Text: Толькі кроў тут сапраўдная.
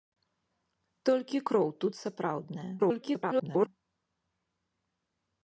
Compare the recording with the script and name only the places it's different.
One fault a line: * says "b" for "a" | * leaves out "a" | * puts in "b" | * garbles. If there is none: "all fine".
* garbles